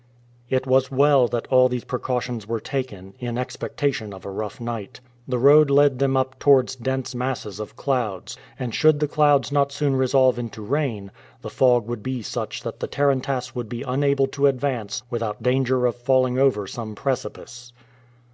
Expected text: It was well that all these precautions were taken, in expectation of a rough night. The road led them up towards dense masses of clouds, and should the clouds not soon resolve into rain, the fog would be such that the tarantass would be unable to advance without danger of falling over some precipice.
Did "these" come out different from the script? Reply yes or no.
no